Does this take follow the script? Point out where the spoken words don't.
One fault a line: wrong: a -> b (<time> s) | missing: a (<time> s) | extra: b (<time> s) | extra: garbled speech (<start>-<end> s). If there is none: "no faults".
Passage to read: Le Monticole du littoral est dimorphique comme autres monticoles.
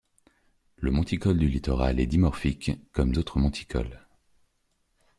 no faults